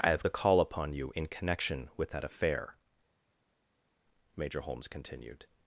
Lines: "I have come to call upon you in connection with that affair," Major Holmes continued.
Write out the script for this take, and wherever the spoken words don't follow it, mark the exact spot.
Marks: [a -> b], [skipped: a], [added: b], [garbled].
"I have [skipped: come] to call upon you in connection with that affair," Major Holmes continued.